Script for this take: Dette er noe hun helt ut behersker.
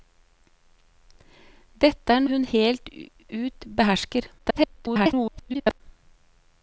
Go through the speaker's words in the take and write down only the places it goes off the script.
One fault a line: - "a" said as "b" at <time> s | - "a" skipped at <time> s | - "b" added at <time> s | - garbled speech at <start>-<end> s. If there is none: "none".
- "noe" skipped at 2.2 s
- garbled speech at 4.4-5.8 s